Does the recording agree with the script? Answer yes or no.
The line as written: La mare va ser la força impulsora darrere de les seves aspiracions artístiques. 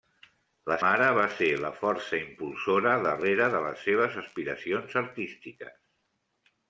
yes